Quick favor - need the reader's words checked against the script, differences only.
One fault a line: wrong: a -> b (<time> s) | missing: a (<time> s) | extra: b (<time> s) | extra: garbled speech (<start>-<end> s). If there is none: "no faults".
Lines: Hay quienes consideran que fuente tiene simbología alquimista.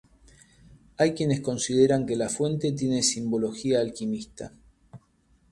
extra: la (2.1 s)